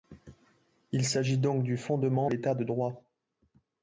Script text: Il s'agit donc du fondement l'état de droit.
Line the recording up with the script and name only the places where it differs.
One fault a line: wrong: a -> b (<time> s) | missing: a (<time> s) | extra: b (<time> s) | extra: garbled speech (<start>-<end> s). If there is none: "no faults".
no faults